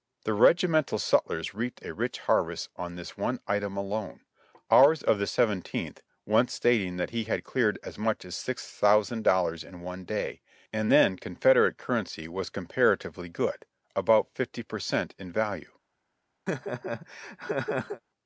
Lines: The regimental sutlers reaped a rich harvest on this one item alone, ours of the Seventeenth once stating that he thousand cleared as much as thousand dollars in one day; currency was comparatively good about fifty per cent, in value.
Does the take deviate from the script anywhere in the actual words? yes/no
yes